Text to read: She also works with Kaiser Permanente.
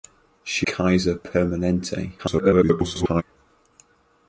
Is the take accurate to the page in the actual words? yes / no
no